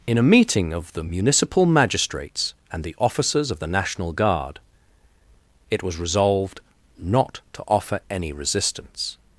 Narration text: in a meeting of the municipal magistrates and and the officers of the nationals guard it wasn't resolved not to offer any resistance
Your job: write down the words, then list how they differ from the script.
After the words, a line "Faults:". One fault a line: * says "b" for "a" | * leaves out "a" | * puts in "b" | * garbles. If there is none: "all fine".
in a meeting of the municipal magistrates and the officers of the national guard it was resolved not to offer any resistance
Faults:
* leaves out "and"
* says "national" for "nationals"
* says "was" for "wasn't"